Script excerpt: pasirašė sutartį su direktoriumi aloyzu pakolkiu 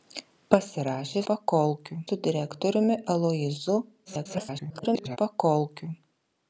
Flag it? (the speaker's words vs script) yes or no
yes